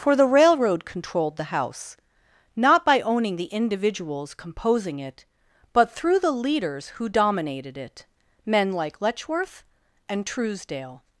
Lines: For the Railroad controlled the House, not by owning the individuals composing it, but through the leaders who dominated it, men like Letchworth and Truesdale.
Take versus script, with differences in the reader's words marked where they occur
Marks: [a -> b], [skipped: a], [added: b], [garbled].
For the Railroad controlled the House, not by owning the individuals composing it, but through the leaders who dominated it, men like Letchworth and Truesdale.